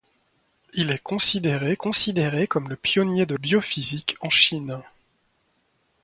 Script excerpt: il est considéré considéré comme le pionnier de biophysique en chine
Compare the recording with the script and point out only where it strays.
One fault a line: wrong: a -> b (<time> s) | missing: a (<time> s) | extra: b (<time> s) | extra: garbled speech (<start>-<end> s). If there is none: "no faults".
no faults